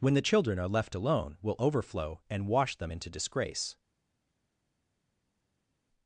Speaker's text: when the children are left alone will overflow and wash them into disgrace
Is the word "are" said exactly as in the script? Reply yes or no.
yes